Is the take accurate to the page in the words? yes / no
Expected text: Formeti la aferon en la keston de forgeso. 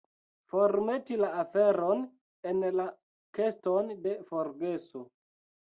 yes